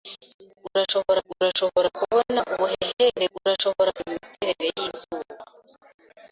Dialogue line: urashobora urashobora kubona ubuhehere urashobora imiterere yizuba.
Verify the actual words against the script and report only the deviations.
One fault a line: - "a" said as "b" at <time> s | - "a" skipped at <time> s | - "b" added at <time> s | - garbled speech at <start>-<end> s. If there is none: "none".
none